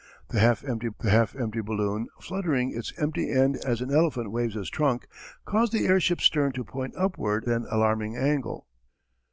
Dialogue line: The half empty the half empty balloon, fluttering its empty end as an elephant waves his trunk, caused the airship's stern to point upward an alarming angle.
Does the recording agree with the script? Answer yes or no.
yes